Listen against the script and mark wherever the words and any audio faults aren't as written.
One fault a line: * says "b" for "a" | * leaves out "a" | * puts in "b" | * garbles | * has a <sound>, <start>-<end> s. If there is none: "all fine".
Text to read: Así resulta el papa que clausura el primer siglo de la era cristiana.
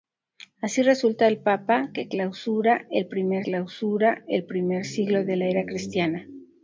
* puts in "clausura el primer"